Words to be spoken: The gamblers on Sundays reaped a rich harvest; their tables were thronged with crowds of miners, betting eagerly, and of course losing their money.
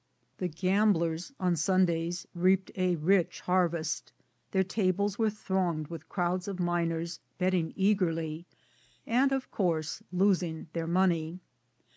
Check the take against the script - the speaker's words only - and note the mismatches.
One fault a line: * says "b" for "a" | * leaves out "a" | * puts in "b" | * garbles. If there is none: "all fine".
all fine